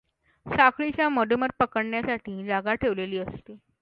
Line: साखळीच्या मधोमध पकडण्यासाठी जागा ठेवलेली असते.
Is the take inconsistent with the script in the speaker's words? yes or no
no